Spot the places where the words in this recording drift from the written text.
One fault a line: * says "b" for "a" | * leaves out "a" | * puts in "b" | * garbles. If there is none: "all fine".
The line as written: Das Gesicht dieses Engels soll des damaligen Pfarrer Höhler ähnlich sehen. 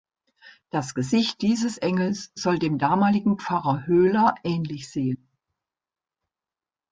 * says "dem" for "des"